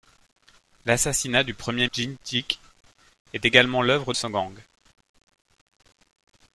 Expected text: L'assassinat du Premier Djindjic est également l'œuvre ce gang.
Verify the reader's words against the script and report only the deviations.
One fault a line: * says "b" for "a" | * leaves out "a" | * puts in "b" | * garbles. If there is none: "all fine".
all fine